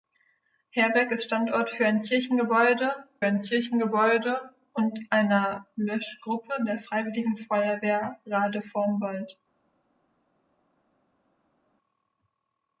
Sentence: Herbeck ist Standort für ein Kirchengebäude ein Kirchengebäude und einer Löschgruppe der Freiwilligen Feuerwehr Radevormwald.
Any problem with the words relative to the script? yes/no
no